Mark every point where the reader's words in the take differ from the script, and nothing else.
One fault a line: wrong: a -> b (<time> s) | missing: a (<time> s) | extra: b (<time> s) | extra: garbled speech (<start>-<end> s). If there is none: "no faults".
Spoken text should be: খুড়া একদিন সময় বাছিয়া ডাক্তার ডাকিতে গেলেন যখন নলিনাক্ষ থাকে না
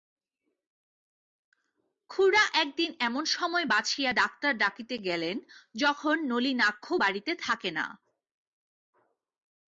extra: এমন (3.0 s)
extra: বাড়িতে (7.0 s)